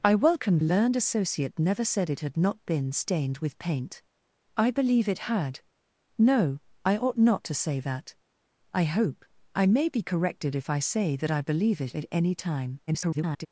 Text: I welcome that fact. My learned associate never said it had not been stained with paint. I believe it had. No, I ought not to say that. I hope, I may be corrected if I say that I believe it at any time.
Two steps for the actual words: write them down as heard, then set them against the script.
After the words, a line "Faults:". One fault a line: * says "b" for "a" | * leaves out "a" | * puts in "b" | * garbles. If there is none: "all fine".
I welcome learned associate never said it had not been stained with paint. I believe it had. No, I ought not to say that. I hope, I may be corrected if I say that I believe it at any time. [garbled]
Faults:
* leaves out "that fact My"
* garbles